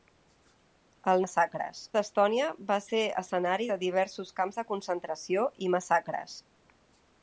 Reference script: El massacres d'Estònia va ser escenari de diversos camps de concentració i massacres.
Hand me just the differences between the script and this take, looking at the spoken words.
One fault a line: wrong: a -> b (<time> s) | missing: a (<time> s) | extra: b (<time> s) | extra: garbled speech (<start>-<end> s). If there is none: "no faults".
no faults